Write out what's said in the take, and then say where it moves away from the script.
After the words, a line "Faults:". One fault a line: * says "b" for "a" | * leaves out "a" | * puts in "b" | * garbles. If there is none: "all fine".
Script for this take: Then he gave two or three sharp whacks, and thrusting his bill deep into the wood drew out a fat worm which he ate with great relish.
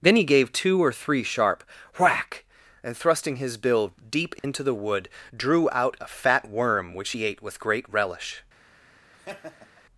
Then he gave two or three sharp whack, and thrusting his bill deep into the wood drew out a fat worm which he ate with great relish.
Faults:
* says "whack" for "whacks"